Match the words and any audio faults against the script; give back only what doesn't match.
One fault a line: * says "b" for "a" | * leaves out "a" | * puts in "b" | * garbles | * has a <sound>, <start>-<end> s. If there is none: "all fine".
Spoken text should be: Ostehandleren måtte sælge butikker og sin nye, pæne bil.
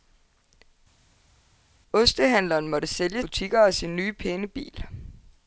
all fine